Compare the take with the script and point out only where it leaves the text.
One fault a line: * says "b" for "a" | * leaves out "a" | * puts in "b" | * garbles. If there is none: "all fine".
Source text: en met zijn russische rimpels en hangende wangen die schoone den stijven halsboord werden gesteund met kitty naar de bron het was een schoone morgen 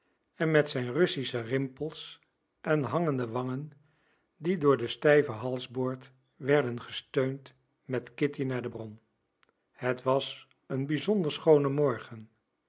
* says "door" for "schoone"
* puts in "bizonder"